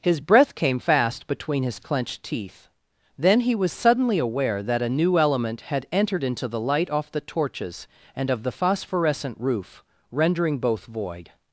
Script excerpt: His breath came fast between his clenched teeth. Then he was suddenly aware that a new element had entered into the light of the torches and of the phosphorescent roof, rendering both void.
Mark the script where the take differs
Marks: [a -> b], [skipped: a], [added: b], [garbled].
His breath came fast between his clenched teeth. Then he was suddenly aware that a new element had entered into the light [of -> off] the torches and of the phosphorescent roof, rendering both void.